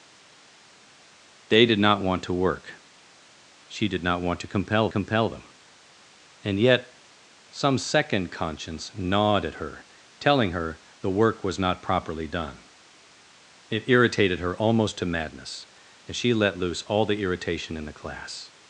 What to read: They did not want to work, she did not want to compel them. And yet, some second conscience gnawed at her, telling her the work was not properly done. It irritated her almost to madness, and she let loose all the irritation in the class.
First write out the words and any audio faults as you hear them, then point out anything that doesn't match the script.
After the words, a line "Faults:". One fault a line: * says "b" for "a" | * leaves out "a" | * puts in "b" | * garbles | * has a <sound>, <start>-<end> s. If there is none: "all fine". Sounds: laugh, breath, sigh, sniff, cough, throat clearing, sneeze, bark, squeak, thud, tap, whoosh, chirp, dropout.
They did not want to work, she did not want to compel compel them. And yet, some second conscience gnawed at her, telling her the work was not properly done. It irritated her almost to madness, and she let loose all the irritation in the class.
Faults:
* puts in "compel"